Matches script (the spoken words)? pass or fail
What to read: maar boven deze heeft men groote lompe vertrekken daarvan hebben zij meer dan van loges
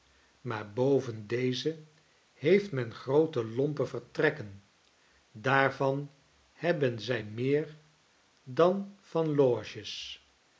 pass